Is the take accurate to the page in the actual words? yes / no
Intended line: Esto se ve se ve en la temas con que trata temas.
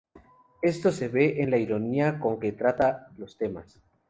no